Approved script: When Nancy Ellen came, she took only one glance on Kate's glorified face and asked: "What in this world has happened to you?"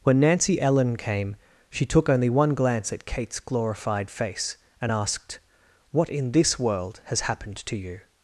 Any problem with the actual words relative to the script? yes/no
yes